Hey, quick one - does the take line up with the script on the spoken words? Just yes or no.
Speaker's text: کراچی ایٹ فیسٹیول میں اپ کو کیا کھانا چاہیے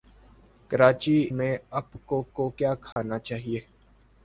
no